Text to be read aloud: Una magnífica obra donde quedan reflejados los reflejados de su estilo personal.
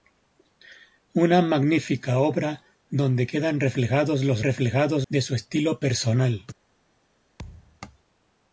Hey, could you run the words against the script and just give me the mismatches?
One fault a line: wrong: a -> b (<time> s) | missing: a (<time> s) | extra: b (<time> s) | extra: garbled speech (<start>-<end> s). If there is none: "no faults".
no faults